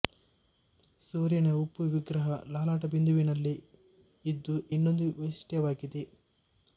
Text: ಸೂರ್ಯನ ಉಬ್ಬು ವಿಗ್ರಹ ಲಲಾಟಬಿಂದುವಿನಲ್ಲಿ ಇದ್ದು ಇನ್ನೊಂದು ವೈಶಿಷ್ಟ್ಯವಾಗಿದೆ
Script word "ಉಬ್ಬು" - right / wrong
right